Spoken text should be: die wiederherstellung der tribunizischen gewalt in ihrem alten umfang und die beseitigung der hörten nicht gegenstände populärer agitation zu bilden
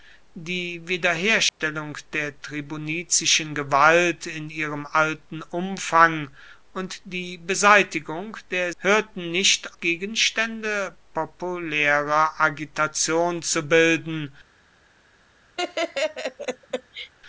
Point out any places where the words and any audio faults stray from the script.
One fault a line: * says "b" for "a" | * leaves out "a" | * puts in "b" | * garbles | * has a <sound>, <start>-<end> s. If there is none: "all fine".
* has a dropout, 1.5-1.6 s
* has a laugh, 15.6-17.1 s